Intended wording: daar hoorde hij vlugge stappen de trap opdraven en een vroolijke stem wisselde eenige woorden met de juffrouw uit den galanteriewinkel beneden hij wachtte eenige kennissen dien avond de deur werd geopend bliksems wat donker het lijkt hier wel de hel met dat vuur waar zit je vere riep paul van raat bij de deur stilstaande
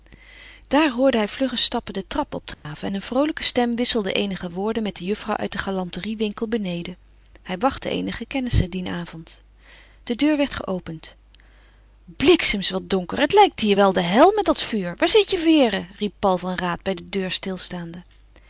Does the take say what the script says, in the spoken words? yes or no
yes